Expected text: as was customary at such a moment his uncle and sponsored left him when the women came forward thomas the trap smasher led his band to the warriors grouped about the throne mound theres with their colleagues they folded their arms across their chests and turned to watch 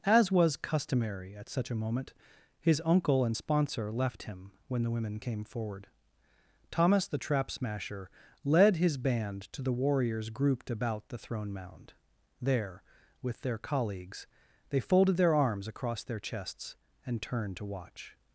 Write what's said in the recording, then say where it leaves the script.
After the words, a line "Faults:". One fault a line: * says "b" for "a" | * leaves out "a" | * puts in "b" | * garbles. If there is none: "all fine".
as was customary at such a moment his uncle and sponsor left him when the women came forward thomas the trap smasher led his band to the warriors grouped about the throne mound there with their colleagues they folded their arms across their chests and turned to watch
Faults:
* says "sponsor" for "sponsored"
* says "there" for "theres"